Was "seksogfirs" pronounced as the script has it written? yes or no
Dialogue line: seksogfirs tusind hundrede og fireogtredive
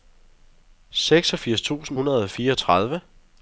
yes